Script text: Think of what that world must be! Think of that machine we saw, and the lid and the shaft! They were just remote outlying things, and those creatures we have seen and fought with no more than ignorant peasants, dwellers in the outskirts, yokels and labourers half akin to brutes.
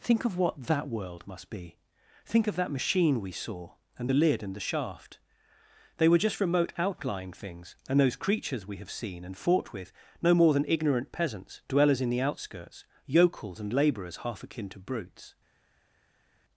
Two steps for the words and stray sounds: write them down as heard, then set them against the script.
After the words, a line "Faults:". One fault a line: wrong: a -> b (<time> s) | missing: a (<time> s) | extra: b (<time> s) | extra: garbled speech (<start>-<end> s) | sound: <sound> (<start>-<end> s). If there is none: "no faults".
Think of what that world must be! Think of that machine we saw, and the lid and the shaft! They were just remote outlying things, and those creatures we have seen and fought with no more than ignorant peasants, dwellers in the outskirts, yokels and labourers half akin to brutes.
Faults:
no faults